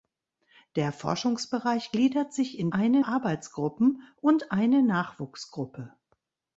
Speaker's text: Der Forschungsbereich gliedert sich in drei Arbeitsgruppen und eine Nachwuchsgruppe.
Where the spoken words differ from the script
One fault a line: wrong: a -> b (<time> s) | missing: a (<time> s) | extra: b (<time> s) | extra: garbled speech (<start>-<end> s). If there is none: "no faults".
wrong: drei -> eine (2.7 s)